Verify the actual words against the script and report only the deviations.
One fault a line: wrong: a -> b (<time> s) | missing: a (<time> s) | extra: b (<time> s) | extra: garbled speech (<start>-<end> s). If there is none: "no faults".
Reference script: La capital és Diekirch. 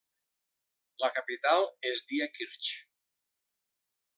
no faults